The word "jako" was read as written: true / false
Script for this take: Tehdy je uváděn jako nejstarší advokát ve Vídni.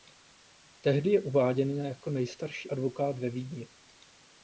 true